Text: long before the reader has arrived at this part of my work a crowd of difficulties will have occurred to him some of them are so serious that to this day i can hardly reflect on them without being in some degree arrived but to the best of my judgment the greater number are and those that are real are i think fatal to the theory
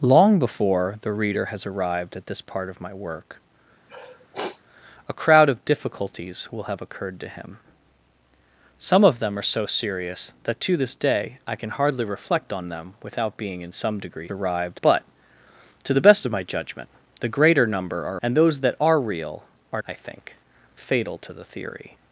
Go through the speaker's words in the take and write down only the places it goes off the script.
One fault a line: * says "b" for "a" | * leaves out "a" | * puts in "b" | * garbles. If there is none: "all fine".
all fine